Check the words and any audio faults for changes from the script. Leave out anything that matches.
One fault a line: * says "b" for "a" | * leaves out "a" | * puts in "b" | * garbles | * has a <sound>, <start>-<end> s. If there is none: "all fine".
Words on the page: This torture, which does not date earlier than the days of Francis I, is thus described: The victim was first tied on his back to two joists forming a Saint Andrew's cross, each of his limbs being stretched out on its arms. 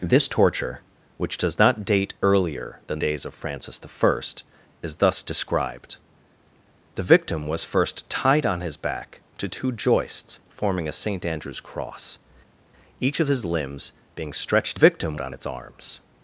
* leaves out "the"
* says "victim" for "out"